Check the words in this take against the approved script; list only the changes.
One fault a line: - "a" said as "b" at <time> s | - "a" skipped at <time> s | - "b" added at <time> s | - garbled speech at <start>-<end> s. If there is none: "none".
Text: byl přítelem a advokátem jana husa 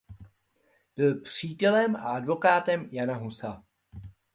none